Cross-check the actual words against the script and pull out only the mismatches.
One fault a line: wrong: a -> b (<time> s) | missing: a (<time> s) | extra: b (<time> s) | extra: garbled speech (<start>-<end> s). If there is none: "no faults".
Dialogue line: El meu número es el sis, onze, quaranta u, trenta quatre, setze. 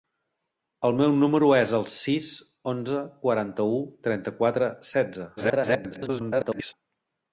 extra: garbled speech (5.4-6.7 s)